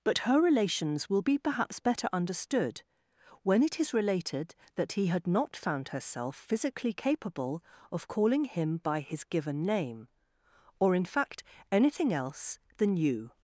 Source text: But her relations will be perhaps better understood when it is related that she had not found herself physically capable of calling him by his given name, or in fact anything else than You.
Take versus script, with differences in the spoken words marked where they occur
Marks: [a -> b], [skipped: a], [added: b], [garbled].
But her relations will be perhaps better understood when it is related that [she -> he] had not found herself physically capable of calling him by his given name, or in fact anything else than You.